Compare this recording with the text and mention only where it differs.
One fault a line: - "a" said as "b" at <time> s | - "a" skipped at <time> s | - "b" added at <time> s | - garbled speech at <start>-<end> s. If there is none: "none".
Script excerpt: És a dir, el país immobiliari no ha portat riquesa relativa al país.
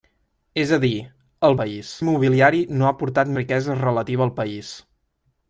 none